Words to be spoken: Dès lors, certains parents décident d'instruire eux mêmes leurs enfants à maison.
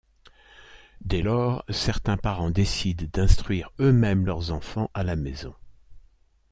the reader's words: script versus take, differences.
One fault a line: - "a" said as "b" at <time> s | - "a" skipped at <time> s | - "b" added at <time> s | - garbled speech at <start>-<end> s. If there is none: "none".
- "la" added at 5.0 s